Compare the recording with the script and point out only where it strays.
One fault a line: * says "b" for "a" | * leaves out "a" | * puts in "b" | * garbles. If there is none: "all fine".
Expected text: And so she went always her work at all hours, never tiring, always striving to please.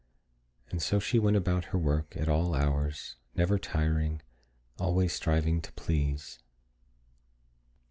* says "about" for "always"